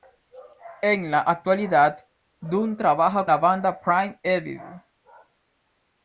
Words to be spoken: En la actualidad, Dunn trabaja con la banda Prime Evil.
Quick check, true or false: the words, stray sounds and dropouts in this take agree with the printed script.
false